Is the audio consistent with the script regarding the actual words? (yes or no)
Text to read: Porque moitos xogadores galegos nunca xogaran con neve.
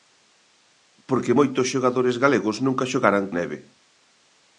no